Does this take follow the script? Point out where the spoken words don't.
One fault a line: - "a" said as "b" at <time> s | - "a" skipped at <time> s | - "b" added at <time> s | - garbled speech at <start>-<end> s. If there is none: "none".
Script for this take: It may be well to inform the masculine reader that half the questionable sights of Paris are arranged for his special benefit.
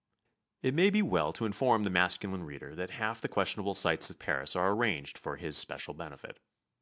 none